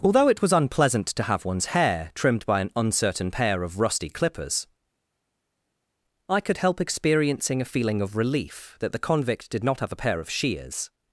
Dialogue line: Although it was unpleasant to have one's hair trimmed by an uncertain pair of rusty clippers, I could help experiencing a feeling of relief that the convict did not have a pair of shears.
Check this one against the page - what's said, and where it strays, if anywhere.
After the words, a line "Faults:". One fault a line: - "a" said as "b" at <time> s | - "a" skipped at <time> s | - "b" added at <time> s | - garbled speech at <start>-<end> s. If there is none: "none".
Although it was unpleasant to have one's hair trimmed by an uncertain pair of rusty clippers, I could help experiencing a feeling of relief that the convict did not have a pair of shears.
Faults:
none